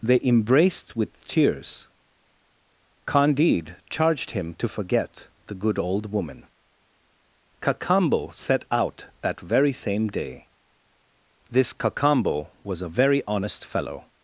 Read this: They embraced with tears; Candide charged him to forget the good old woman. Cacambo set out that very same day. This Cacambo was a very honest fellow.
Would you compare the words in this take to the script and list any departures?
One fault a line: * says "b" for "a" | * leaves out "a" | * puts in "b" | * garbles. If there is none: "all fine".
all fine